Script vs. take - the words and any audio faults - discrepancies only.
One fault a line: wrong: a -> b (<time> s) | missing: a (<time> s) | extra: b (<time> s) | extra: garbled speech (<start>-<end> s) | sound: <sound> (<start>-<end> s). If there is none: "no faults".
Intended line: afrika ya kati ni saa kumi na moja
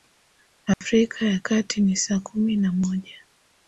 sound: dropout (0.7-0.8 s)